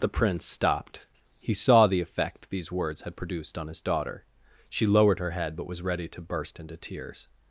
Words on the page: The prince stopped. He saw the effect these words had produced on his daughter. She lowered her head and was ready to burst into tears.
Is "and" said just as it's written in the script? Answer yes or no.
no